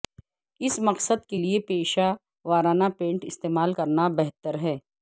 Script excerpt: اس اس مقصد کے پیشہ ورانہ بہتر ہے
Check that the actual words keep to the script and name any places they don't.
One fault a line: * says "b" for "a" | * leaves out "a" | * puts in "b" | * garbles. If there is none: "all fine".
* leaves out "اس"
* puts in "لئے"
* puts in "پینٹ استعمال کرنا"